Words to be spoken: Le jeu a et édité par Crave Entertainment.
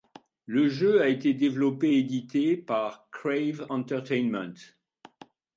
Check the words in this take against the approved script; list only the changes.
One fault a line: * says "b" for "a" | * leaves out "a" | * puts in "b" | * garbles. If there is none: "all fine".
* puts in "été développé"